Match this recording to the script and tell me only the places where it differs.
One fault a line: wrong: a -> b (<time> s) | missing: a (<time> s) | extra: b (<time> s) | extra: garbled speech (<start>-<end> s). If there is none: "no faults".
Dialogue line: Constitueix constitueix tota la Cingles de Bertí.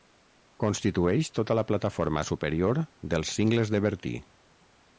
missing: constitueix (1.3 s)
extra: plataforma superior dels (1.7 s)